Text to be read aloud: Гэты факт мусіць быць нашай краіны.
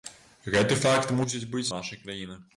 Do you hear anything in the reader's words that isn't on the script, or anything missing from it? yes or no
no